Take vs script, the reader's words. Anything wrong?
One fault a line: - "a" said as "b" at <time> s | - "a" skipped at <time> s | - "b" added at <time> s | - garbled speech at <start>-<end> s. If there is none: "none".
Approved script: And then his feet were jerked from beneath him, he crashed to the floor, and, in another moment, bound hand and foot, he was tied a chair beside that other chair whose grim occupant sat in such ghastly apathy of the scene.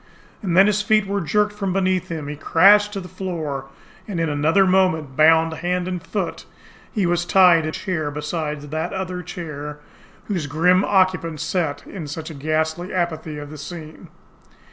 none